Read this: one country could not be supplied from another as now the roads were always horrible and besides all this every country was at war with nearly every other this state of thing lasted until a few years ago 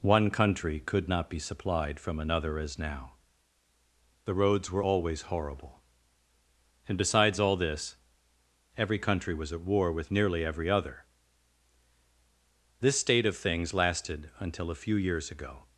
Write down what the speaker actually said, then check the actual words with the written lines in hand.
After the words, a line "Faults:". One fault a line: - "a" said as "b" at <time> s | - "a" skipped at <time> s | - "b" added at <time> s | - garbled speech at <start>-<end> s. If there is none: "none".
one country could not be supplied from another as now the roads were always horrible and besides all this every country was at war with nearly every other this state of things lasted until a few years ago
Faults:
- "thing" said as "things" at 13.4 s